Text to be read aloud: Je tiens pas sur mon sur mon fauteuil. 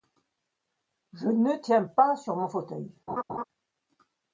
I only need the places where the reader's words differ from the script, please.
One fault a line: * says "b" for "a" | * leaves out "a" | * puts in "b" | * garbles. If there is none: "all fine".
* puts in "ne"
* leaves out "sur mon"